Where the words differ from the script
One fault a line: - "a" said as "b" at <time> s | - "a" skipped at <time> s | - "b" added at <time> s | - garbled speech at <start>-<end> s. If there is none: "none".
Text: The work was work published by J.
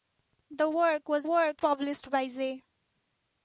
none